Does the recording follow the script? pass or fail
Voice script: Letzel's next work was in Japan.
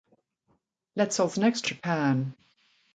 fail